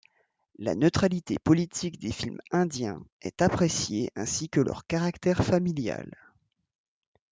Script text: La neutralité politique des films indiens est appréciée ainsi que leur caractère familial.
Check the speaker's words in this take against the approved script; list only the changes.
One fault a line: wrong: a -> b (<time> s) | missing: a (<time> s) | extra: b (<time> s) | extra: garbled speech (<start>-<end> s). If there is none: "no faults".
no faults